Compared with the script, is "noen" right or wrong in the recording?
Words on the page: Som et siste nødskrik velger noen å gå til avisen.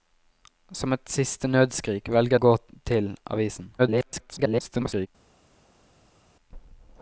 wrong